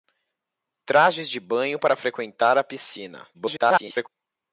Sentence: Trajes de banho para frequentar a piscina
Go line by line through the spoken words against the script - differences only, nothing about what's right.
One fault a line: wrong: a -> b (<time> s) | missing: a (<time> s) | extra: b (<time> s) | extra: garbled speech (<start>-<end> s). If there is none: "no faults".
extra: garbled speech (3.3-4.1 s)